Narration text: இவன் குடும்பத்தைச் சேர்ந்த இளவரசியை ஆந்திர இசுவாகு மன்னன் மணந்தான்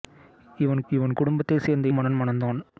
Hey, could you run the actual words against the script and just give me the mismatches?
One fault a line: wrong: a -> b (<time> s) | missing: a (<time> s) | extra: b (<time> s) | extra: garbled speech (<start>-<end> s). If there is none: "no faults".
extra: இவன் (0.9 s)
missing: இளவரசியை ஆந்திர இசுவாகு (1.9 s)